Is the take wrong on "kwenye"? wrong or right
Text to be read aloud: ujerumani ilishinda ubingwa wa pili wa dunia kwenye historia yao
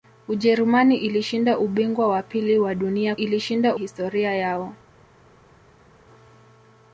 wrong